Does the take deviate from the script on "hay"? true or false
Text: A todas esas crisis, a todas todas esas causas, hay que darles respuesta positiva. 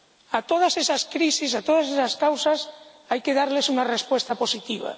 false